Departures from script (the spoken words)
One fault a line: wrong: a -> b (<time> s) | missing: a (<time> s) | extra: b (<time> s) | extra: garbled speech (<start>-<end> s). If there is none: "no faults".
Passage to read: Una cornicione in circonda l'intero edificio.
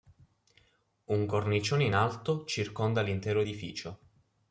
wrong: Una -> Un (1.1 s)
extra: alto (1.9 s)